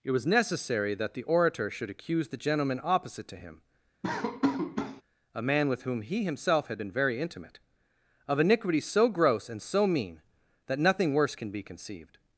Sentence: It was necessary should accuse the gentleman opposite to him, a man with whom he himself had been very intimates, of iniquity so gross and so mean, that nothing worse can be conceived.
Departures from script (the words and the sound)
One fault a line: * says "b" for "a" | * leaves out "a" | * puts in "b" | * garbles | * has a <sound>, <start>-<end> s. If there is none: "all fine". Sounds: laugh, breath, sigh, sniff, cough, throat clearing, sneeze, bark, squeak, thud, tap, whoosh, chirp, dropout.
* puts in "that the orator"
* has a laugh, 4.0-5.0 s
* says "intimate" for "intimates"